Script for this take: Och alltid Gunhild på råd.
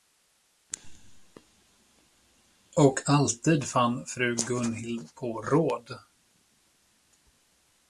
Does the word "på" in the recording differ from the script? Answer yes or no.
no